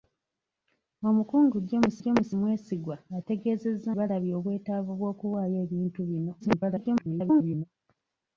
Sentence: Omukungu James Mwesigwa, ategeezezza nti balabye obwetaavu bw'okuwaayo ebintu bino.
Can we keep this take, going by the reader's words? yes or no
no